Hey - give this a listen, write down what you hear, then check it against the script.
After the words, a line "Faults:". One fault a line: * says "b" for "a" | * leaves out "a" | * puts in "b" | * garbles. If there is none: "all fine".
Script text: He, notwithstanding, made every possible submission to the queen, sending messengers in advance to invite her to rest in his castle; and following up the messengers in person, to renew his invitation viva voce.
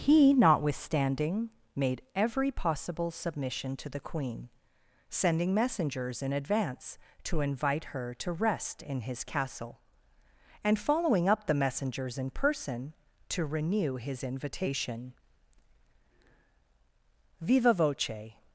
He, notwithstanding, made every possible submission to the queen, sending messengers in advance to invite her to rest in his castle; and following up the messengers in person, to renew his invitation viva voce.
Faults:
all fine